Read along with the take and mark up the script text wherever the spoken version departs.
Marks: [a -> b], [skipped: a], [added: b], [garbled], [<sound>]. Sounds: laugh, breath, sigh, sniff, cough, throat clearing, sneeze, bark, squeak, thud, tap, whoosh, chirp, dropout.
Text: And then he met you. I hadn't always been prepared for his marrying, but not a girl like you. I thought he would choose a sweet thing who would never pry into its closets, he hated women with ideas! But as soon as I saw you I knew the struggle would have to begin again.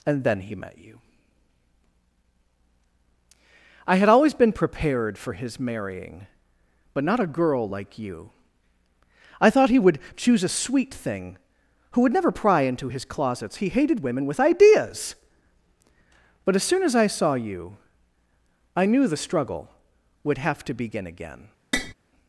And then he met you. I [hadn't -> had] always been prepared for his marrying, but not a girl like you. I thought he would choose a sweet thing who would never pry into [its -> his] closets, he hated women with ideas! But as soon as I saw you I knew the struggle would have to begin again. [tap]